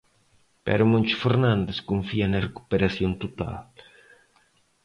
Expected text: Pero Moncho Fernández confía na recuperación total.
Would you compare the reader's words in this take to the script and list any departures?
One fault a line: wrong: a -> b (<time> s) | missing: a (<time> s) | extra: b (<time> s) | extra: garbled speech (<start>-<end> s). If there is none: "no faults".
no faults